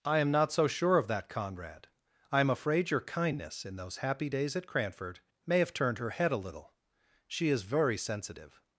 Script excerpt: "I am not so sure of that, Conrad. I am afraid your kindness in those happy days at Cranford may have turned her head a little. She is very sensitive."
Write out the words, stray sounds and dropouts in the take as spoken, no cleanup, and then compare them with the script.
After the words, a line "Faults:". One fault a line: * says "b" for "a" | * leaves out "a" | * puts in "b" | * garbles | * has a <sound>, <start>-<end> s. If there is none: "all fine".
"I am not so sure of that, Conrad. I am afraid your kindness in those happy days at Cranford may have turned her head a little. She is very sensitive."
Faults:
all fine